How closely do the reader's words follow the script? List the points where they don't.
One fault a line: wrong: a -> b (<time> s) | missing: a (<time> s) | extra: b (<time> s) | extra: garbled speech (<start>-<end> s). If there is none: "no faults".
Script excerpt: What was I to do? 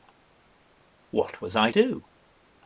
missing: to (1.7 s)